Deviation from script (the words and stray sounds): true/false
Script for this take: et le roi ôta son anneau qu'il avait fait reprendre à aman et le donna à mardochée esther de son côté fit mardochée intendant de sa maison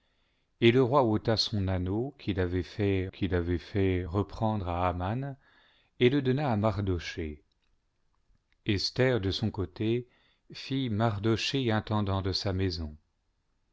true